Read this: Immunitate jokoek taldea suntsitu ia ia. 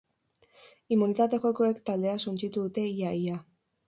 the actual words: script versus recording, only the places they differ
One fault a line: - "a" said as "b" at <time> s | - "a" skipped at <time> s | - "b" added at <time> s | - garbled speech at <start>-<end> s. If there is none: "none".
- "dute" added at 2.6 s